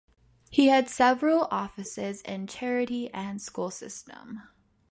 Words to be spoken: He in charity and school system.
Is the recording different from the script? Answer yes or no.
yes